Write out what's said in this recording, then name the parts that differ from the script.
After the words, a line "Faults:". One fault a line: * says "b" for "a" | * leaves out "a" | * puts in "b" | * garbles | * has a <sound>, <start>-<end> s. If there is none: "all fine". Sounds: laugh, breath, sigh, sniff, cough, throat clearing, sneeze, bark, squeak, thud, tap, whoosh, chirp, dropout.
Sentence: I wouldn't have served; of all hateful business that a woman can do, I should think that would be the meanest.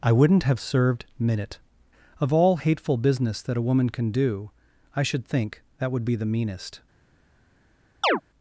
I wouldn't have served; minute of all hateful business that a woman can do, I should think that would be the meanest.
Faults:
* puts in "minute"
* has a chirp, 8.0-8.2 s